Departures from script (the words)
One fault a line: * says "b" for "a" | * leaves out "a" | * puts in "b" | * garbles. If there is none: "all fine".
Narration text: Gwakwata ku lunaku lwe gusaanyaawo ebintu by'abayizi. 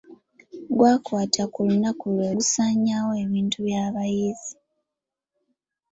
all fine